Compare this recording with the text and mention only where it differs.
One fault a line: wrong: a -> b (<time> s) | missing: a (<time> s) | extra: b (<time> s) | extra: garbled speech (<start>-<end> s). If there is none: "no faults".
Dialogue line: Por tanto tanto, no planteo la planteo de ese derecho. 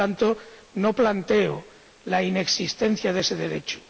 missing: tanto (0.3 s)
wrong: planteo -> inexistencia (2.2 s)